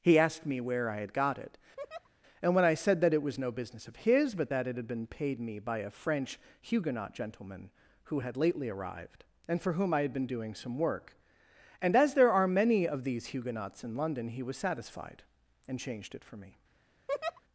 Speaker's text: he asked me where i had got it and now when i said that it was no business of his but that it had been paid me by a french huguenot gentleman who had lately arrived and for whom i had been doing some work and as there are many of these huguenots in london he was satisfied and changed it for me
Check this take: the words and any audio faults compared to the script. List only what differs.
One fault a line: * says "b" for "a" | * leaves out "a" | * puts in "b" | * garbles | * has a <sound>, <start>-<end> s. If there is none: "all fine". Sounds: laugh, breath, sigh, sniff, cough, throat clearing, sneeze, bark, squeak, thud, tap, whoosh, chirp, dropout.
* has a laugh, 1.8-2.1 s
* leaves out "now"
* has a laugh, 17.1-17.4 s